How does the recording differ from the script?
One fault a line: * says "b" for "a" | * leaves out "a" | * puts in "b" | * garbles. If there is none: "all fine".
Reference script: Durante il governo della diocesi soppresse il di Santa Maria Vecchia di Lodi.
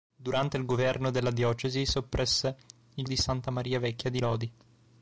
all fine